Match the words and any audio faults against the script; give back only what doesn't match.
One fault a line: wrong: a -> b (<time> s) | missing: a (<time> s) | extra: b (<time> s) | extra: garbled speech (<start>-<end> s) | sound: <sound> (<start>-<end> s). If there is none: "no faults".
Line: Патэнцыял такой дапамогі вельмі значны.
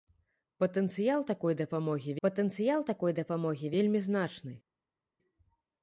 extra: патэнцыял такой дапамогі (2.3 s)